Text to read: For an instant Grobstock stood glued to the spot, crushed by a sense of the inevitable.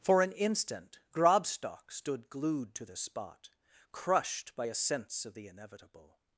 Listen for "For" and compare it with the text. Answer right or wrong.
right